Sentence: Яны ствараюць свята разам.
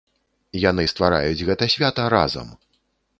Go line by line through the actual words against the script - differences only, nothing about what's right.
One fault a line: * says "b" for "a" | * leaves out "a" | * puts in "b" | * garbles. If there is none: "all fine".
* puts in "гэта"